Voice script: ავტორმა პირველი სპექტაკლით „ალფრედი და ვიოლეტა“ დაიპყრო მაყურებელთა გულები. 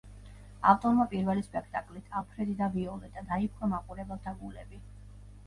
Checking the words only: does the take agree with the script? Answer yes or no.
yes